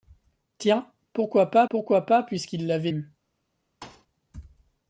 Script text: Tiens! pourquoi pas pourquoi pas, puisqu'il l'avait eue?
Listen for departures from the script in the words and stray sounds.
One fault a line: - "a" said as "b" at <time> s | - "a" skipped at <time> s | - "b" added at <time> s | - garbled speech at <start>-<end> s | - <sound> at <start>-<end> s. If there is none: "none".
- thud at 3.8-4.1 s